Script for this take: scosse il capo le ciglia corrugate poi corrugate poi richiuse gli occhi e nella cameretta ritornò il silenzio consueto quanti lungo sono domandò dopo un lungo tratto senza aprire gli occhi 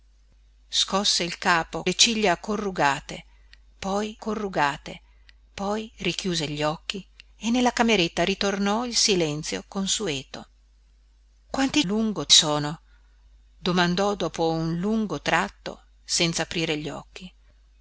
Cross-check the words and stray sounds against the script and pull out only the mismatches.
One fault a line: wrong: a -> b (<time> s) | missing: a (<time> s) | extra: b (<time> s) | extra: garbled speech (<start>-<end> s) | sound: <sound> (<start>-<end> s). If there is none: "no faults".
no faults